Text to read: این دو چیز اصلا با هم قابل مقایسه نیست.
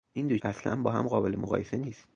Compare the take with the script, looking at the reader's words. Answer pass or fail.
fail